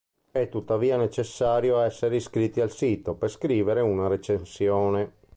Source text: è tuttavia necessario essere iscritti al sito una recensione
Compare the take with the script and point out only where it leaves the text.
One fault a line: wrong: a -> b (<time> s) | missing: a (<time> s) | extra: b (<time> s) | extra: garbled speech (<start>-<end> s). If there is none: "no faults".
extra: per scrivere (3.1 s)